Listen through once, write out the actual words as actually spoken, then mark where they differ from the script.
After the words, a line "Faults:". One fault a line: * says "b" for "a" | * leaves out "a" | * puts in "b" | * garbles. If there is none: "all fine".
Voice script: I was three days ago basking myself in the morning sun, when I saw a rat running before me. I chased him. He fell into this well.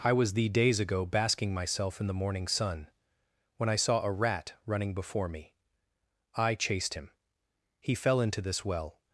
I was thee days ago basking myself in the morning sun, when I saw a rat running before me. I chased him. He fell into this well.
Faults:
* says "thee" for "three"